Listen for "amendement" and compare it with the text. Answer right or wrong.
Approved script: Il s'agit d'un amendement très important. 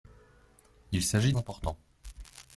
wrong